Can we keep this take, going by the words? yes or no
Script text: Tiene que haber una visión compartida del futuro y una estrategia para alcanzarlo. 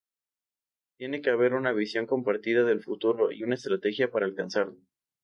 yes